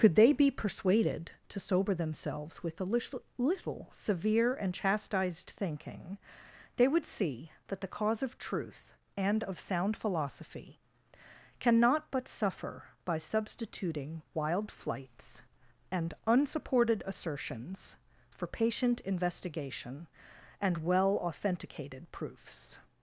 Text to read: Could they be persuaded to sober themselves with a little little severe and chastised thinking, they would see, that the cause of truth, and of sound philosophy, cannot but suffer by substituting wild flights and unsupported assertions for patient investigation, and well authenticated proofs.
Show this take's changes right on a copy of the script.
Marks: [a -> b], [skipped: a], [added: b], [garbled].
Could they be persuaded to sober themselves with a little little severe and chastised thinking, they would see, that the cause of truth, and of sound philosophy, cannot but suffer by substituting wild flights and unsupported assertions for patient investigation, and well authenticated proofs.